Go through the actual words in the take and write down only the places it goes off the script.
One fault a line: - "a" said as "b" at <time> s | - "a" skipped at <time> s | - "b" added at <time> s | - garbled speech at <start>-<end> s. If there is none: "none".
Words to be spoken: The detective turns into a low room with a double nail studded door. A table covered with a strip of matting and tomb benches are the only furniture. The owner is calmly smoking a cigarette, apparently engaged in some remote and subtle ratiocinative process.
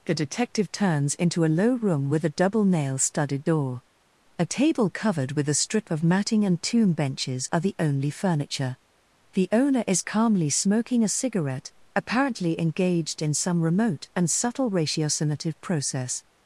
none